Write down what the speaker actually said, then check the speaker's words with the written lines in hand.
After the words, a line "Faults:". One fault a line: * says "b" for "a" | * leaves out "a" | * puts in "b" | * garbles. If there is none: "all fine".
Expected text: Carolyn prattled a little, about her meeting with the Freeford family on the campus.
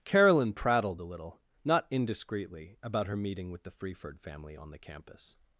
Carolyn prattled a little, not indiscreetly, about her meeting with the Freeford family on the campus.
Faults:
* puts in "not indiscreetly"